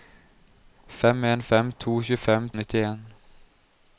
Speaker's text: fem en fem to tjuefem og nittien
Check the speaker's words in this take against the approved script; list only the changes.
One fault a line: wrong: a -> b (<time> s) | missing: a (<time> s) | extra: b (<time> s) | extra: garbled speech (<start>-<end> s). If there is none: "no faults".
no faults